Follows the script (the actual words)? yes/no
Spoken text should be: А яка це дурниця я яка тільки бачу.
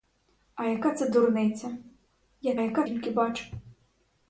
yes